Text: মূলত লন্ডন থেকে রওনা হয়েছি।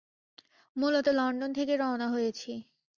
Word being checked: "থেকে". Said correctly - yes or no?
yes